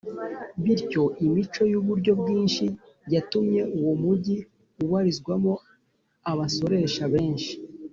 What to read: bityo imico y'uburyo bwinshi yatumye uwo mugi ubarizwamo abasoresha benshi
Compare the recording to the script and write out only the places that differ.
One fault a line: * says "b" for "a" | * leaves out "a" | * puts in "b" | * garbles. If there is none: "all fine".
all fine